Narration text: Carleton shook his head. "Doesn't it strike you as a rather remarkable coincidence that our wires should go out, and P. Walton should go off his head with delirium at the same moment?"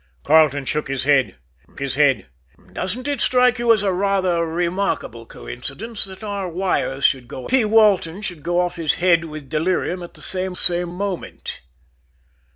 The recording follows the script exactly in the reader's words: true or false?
false